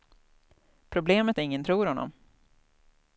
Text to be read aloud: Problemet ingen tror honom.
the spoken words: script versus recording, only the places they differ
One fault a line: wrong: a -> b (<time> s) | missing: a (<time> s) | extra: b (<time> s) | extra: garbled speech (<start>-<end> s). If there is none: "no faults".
no faults